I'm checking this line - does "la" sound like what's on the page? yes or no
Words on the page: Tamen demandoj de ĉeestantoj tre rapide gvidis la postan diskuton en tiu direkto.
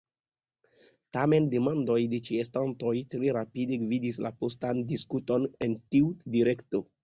yes